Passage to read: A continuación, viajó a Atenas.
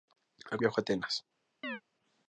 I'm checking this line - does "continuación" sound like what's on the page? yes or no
no